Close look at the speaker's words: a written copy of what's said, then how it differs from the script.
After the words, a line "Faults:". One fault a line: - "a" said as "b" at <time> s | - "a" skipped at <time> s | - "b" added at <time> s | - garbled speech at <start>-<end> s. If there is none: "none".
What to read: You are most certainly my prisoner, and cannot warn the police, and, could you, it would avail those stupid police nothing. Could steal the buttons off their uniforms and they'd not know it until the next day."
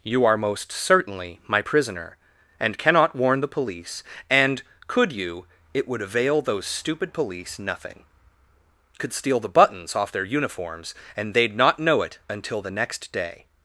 You are most certainly my prisoner, and cannot warn the police, and, could you, it would avail those stupid police nothing. Could steal the buttons off their uniforms and they'd not know it until the next day."
Faults:
none